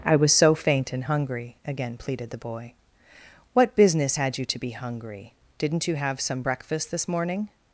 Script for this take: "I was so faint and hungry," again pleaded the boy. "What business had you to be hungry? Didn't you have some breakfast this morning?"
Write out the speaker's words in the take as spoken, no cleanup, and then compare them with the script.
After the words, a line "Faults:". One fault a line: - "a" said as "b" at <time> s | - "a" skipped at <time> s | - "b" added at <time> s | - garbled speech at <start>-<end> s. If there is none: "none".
"I was so faint and hungry," again pleaded the boy. "What business had you to be hungry? Didn't you have some breakfast this morning?"
Faults:
none